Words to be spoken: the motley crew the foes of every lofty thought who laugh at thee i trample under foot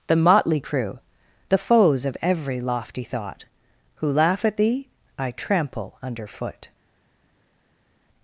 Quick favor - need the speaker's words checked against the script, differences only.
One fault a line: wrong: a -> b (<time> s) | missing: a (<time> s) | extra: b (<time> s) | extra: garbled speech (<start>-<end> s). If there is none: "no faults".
no faults